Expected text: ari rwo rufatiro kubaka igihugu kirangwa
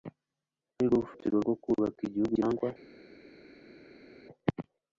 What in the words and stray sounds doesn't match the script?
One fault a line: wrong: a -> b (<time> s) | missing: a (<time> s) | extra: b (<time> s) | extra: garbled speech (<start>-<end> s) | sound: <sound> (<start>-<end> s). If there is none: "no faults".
extra: rwo (1.4 s)